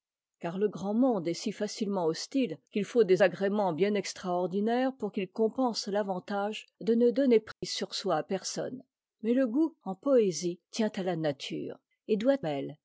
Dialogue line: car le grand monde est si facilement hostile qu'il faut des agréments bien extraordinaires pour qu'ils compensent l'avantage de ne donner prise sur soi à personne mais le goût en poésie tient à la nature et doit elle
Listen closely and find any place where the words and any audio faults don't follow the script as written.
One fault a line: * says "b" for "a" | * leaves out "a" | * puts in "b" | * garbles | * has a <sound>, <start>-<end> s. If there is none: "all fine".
* has a dropout, 7.5-7.6 s